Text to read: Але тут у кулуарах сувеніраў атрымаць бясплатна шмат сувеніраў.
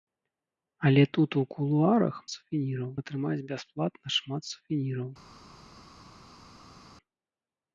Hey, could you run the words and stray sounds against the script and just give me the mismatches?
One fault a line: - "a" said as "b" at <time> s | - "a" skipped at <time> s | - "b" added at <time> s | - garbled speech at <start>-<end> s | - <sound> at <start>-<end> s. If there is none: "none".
none